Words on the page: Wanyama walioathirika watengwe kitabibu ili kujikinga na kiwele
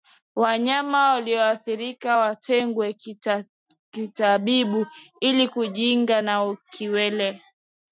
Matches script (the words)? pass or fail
pass